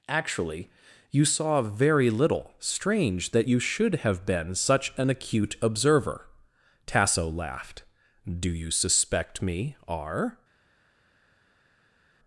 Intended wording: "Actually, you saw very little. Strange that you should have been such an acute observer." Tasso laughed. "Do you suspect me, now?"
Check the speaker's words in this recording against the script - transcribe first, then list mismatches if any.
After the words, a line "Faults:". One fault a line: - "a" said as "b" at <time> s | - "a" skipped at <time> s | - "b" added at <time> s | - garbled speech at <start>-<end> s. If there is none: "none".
"Actually, you saw very little. Strange that you should have been such an acute observer." Tasso laughed. "Do you suspect me, r?"
Faults:
- "now" said as "r" at 9.9 s